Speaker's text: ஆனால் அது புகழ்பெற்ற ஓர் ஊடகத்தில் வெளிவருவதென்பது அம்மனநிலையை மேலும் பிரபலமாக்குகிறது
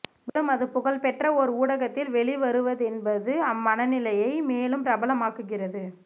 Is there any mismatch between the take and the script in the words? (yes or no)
yes